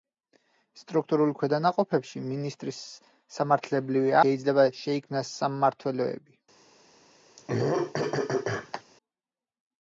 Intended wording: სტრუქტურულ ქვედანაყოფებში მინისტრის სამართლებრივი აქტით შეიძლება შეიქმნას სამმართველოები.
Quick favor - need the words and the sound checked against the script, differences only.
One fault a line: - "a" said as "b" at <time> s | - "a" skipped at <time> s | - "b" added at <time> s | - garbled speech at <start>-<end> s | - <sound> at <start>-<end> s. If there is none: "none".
- "აქტით" skipped at 4.2 s
- throat clearing at 7.4-8.8 s